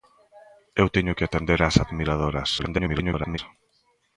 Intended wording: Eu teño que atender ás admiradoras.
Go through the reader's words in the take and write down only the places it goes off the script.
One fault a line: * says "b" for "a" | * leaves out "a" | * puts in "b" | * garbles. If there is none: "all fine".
* garbles